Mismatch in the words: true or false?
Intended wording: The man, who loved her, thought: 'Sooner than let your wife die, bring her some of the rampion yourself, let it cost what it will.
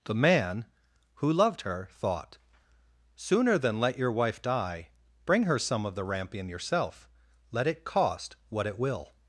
false